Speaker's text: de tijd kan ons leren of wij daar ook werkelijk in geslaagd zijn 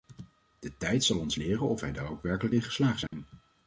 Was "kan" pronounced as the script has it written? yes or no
no